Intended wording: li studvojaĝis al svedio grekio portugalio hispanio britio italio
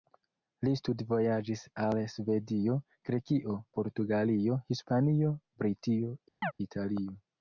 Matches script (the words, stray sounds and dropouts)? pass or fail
fail